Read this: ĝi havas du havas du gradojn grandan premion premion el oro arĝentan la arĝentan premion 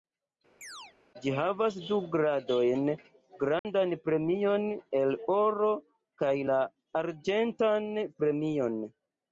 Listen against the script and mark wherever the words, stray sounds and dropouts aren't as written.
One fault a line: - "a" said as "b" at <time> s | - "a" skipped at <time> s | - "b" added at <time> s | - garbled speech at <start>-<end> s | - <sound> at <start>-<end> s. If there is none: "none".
- chirp at 0.6-1.0 s
- "havas du" skipped at 2.0 s
- dropout at 3.6-3.6 s
- "premion" skipped at 4.7 s
- "arĝentan" said as "kaj" at 6.2 s